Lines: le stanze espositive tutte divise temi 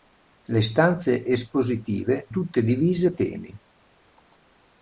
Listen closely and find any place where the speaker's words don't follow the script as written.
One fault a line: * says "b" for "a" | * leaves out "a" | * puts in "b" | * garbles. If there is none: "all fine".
all fine